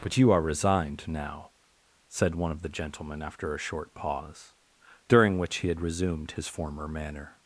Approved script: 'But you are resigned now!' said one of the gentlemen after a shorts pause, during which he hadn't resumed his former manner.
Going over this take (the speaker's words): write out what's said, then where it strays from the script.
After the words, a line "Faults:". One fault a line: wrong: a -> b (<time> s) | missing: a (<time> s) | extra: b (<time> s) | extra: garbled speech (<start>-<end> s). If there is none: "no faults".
'But you are resigned now!' said one of the gentlemen after a short pause, during which he had resumed his former manner.
Faults:
wrong: shorts -> short (3.6 s)
wrong: hadn't -> had (5.7 s)